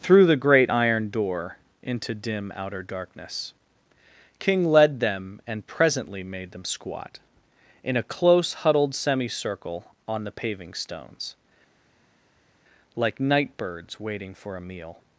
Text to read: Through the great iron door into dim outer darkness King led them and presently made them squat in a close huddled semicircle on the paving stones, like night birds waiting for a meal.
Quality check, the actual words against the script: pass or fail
pass